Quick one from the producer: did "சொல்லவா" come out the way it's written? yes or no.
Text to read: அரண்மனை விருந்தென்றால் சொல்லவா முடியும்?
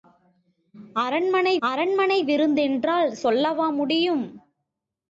yes